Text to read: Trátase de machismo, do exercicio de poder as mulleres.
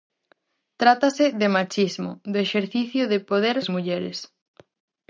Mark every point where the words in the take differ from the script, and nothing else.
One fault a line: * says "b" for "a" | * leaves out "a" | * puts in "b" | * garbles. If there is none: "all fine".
all fine